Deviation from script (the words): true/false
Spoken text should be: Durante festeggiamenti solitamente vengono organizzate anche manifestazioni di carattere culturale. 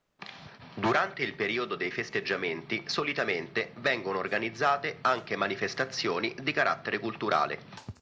true